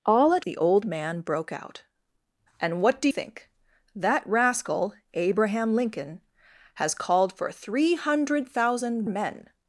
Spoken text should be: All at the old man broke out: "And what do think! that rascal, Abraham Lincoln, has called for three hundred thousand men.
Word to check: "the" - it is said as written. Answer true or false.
true